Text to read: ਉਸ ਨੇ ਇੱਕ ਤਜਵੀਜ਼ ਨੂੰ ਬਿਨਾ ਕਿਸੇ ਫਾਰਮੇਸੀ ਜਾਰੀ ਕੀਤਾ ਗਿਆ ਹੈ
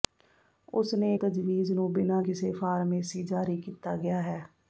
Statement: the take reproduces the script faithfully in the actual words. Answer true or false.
false